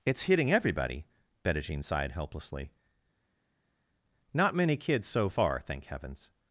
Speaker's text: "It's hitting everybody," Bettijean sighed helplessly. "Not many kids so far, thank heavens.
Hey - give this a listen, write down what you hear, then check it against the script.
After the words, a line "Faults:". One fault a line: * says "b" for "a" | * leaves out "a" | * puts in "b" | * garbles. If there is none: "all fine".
"It's hitting everybody," Bettijean sighed helplessly. "Not many kids so far, thank heavens.
Faults:
all fine